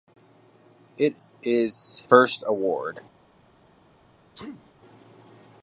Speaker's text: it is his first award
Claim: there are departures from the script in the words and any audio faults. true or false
true